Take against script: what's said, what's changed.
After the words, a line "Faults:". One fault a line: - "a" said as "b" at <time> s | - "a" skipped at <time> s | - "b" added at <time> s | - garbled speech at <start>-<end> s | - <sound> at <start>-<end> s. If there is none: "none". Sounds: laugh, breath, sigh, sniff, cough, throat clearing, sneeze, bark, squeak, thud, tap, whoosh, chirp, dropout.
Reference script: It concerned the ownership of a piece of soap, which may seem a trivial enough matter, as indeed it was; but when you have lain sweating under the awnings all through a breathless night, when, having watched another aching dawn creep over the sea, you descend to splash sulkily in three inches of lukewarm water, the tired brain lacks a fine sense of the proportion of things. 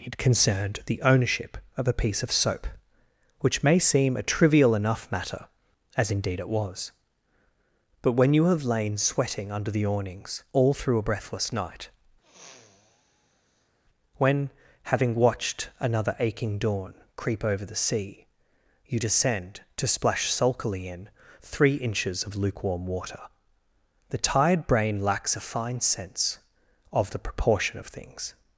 It concerned the ownership of a piece of soap, which may seem a trivial enough matter, as indeed it was; but when you have lain sweating under the awnings all through a breathless night, when, having watched another aching dawn creep over the sea, you descend to splash sulkily in three inches of lukewarm water, the tired brain lacks a fine sense of the proportion of things.
Faults:
- sniff at 12.2-13.8 s